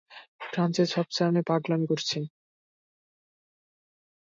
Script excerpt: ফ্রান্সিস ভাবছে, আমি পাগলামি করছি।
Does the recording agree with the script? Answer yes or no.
yes